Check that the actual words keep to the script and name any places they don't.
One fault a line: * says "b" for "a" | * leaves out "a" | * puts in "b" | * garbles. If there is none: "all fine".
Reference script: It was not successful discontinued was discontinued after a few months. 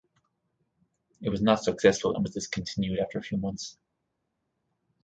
* says "and" for "discontinued"